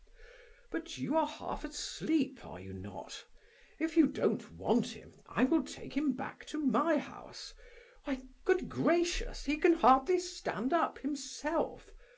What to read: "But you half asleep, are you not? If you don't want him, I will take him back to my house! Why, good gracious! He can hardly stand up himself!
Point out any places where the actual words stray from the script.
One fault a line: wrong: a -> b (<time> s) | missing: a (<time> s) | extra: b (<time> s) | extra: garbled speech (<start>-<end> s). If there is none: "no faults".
extra: are (1.1 s)